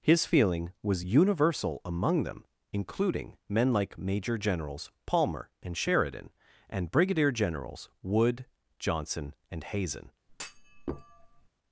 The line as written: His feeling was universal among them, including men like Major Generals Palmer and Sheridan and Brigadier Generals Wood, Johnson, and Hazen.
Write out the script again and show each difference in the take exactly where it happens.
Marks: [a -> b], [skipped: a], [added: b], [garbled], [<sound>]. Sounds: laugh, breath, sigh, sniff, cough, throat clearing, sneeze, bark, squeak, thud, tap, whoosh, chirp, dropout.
His feeling was universal among them, including men like Major Generals Palmer and Sheridan and Brigadier Generals Wood, Johnson, and Hazen. [thud]